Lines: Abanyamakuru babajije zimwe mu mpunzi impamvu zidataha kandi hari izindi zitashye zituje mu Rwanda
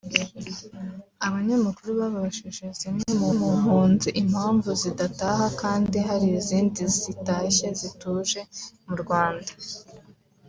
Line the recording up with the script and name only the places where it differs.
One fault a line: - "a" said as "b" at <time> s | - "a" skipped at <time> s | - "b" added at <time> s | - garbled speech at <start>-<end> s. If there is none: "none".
- "mu" added at 3.4 s